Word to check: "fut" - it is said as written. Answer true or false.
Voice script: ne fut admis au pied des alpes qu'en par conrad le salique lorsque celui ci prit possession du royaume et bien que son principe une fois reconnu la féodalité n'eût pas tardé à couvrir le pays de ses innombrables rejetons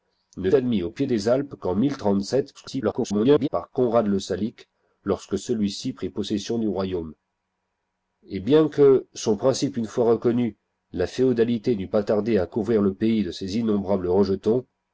false